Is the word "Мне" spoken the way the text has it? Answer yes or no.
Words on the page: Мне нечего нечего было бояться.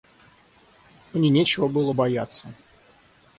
yes